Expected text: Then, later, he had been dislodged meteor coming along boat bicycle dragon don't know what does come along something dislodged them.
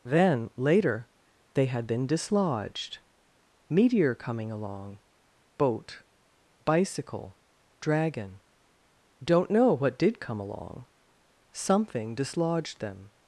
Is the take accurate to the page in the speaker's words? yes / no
no